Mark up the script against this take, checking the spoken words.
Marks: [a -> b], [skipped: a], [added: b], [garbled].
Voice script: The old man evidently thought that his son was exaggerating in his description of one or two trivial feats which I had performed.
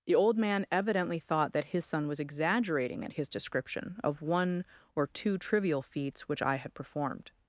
The old man evidently thought that his son was exaggerating [in -> at] his description of one or two trivial feats which I had performed.